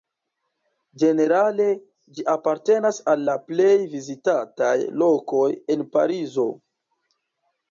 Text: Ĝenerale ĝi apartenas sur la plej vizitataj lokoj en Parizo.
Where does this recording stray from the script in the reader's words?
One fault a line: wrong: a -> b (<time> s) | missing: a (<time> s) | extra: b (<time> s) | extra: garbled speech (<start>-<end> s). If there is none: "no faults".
wrong: sur -> al (3.1 s)